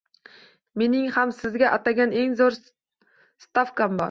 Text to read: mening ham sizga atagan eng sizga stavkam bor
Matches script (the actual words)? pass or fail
fail